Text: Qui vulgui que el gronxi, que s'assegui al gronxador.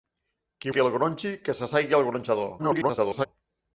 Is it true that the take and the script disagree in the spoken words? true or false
true